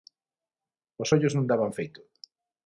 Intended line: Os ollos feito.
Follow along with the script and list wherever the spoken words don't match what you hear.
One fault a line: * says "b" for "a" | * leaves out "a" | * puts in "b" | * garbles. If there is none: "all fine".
* puts in "non daban"